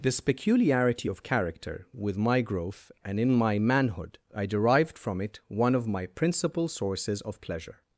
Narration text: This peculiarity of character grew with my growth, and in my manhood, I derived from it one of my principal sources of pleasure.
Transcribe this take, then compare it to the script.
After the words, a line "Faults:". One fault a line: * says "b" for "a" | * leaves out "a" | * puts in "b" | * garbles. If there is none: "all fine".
This peculiarity of character with my growth, and in my manhood, I derived from it one of my principal sources of pleasure.
Faults:
* leaves out "grew"